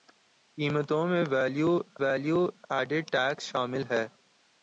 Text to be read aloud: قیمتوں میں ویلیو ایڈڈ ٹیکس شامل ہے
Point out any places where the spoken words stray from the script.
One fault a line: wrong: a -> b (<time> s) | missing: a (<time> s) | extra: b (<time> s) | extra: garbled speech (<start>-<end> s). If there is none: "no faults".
extra: ویلیو (2.0 s)